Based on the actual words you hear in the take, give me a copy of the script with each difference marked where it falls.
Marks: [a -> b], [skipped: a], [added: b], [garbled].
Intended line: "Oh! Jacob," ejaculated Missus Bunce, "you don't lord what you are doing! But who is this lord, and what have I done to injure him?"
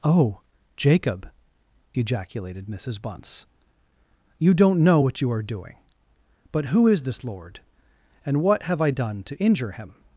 "Oh! Jacob," ejaculated Missus Bunce, "you don't [lord -> know] what you are doing! But who is this lord, and what have I done to injure him?"